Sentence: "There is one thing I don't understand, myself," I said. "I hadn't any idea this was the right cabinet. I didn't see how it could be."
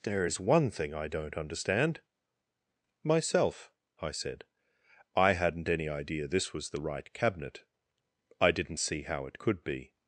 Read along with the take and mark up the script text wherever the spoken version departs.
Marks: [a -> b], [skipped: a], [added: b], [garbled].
"There is one thing I don't understand, myself," I said. "I hadn't any idea this was the right cabinet. I didn't see how it could be."